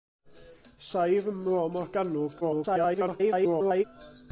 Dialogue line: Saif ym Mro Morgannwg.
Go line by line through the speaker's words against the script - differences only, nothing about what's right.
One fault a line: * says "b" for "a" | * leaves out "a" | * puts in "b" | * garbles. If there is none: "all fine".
* garbles